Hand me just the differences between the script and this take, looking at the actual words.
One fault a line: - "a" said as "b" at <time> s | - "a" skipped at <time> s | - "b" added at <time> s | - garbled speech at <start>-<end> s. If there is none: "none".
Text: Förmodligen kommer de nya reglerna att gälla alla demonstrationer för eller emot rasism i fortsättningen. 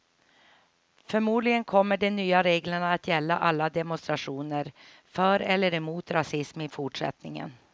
none